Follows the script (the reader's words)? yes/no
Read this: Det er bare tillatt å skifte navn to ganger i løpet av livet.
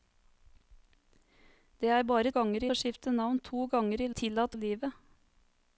no